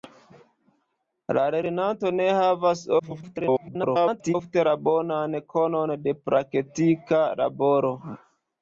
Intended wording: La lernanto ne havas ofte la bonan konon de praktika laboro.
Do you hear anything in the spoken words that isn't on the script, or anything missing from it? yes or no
yes